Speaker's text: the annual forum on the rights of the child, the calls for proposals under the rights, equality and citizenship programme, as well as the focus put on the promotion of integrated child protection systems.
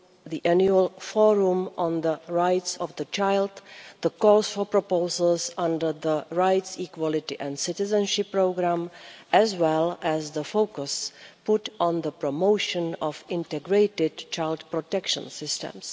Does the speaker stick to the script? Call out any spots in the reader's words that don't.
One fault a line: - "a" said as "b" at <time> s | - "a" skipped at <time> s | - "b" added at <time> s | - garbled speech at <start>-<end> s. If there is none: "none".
none